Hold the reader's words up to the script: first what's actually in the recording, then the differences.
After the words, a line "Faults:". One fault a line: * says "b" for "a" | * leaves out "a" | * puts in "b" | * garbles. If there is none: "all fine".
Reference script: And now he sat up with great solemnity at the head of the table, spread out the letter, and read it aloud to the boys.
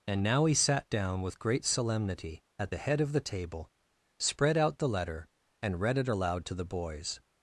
And now he sat down with great solemnity at the head of the table, spread out the letter, and read it aloud to the boys.
Faults:
* says "down" for "up"